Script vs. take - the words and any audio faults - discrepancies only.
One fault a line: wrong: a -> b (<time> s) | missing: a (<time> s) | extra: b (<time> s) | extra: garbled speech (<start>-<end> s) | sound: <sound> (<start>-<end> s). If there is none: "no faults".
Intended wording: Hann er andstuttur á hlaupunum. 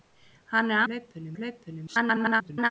wrong: andstuttur -> hlaupunum (0.9 s)
extra: garbled speech (1.9-2.7 s)